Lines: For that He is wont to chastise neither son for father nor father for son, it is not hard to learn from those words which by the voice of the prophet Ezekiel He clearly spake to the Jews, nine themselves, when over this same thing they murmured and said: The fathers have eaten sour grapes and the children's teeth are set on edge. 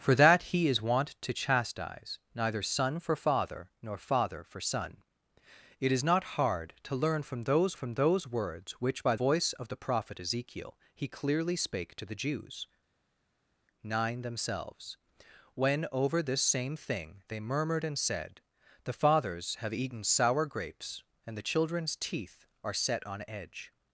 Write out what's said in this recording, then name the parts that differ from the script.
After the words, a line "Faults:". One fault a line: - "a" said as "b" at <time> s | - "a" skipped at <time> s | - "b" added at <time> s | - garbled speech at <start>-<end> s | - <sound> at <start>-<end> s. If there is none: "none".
For that He is wont to chastise neither son for father nor father for son, it is not hard to learn from those from those words which by voice of the prophet Ezekiel He clearly spake to the Jews, nine themselves, when over this same thing they murmured and said: The fathers have eaten sour grapes and the children's teeth are set on edge.
Faults:
- "from those" added at 7.7 s
- "the" skipped at 9.1 s